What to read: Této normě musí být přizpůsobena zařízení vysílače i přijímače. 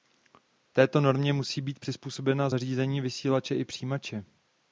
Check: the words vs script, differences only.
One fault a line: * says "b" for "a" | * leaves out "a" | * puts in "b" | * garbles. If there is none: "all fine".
all fine